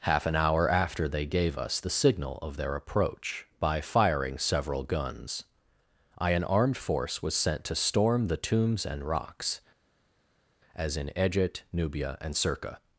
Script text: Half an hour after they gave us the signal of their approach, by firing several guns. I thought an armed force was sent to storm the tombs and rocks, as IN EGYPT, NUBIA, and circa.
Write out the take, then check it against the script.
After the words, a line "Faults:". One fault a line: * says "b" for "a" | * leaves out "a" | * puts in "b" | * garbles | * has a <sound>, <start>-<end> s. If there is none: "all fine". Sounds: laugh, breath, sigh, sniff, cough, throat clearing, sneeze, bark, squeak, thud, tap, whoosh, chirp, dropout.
Half an hour after they gave us the signal of their approach, by firing several guns. I an armed force was sent to storm the tombs and rocks, as IN EGYPT, NUBIA, and circa.
Faults:
* leaves out "thought"